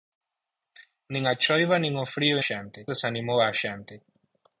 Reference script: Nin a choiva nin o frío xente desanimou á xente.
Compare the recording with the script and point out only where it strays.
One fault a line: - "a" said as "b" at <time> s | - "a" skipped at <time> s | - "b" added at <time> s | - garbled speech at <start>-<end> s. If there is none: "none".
none